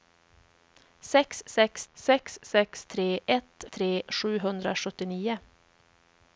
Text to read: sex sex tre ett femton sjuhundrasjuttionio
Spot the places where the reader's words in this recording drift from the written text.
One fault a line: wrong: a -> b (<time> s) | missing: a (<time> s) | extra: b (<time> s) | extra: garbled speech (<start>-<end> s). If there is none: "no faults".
extra: sex sex (1.9 s)
wrong: femton -> tre (3.7 s)